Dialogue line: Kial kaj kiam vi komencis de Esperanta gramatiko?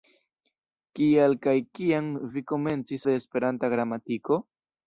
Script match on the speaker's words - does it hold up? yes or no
yes